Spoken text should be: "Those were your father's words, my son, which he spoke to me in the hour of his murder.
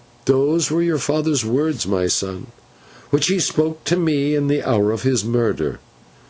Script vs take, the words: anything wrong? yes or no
no